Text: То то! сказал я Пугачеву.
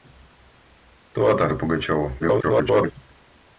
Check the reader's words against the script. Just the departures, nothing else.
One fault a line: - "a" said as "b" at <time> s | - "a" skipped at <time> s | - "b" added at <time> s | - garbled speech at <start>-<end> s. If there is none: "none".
- "сказал" skipped at 1.5 s
- garbled speech at 2.2-2.9 s